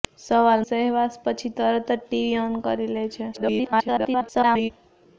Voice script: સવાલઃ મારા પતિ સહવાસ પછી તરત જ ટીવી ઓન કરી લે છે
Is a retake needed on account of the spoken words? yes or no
yes